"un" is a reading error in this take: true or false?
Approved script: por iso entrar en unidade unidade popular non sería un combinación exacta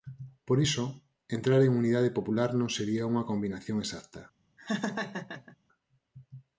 true